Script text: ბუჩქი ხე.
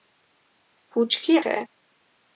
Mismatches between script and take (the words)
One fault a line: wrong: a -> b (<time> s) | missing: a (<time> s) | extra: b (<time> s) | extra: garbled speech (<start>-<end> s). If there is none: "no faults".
no faults